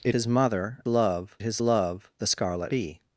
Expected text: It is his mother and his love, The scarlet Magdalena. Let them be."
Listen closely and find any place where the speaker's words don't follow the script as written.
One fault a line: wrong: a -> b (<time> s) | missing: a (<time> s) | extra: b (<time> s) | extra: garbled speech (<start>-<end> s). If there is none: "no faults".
missing: is (0.1 s)
wrong: and -> love (0.9 s)
missing: Magdalena Let them (2.7 s)